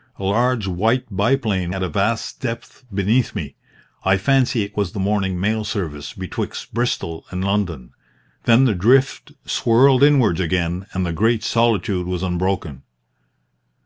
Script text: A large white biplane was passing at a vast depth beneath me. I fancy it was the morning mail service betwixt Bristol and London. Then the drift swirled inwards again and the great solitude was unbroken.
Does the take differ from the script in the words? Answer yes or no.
yes